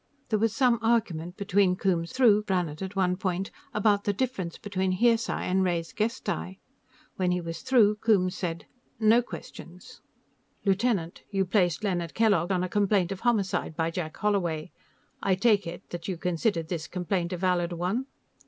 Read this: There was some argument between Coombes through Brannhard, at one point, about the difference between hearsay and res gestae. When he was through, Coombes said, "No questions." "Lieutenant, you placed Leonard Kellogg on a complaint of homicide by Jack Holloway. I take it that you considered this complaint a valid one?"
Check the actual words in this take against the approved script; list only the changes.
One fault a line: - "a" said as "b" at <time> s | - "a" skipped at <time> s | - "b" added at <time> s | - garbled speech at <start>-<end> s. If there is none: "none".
none